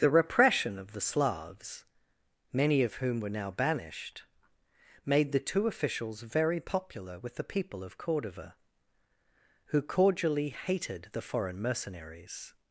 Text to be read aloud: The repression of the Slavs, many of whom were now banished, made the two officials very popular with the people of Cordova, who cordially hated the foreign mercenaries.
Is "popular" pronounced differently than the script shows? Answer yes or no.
no